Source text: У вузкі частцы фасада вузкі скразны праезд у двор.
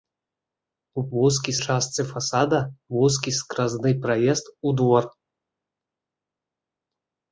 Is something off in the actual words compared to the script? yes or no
no